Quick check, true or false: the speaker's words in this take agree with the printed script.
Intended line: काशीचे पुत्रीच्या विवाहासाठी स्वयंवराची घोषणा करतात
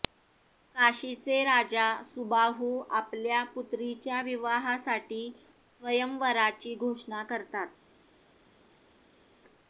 false